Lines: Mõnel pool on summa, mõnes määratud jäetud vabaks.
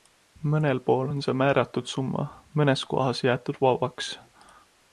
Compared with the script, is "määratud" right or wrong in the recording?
wrong